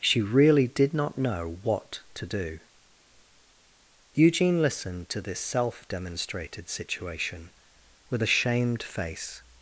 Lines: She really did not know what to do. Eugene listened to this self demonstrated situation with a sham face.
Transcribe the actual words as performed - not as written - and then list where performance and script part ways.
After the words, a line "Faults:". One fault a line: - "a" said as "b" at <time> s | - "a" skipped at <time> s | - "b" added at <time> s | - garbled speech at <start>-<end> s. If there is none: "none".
She really did not know what to do. Eugene listened to this self demonstrated situation with a shamed face.
Faults:
- "sham" said as "shamed" at 8.3 s